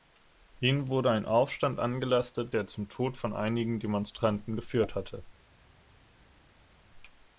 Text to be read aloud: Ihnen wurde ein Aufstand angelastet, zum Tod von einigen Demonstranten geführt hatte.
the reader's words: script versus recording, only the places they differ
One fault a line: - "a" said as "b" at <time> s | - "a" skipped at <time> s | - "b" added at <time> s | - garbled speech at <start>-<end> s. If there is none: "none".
- "der" added at 2.5 s